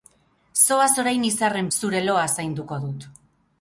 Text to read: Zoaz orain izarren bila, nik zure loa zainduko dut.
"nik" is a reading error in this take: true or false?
true